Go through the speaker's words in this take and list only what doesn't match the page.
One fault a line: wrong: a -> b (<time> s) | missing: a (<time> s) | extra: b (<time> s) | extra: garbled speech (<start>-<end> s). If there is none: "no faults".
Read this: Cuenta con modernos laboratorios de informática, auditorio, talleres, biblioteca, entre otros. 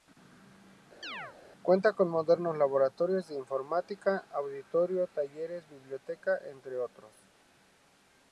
no faults